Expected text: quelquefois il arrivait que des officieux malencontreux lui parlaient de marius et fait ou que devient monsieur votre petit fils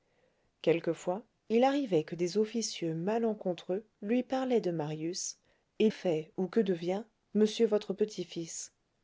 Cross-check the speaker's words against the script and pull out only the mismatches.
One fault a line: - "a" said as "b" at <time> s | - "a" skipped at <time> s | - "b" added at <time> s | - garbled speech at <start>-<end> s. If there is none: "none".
none